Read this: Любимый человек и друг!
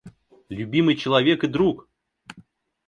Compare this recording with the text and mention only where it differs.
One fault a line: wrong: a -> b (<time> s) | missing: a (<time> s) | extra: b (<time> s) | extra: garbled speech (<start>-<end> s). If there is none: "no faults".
no faults